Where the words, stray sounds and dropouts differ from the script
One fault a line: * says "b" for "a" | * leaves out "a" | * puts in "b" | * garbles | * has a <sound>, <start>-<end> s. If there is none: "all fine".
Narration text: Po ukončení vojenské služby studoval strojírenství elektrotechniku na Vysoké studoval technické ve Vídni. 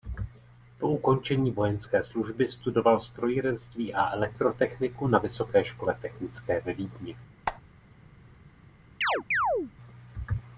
* puts in "a"
* says "škole" for "studoval"
* has a squeak, 7.5-7.6 s
* has a chirp, 9.0-9.7 s